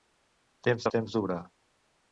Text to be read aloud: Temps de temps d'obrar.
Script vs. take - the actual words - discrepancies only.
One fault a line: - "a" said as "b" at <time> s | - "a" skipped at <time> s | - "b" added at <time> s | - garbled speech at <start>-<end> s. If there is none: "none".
none